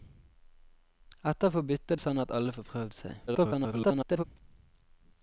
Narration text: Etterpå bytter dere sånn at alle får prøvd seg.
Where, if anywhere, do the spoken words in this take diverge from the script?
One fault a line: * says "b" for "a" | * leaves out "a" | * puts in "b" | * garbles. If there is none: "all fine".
* leaves out "dere"
* garbles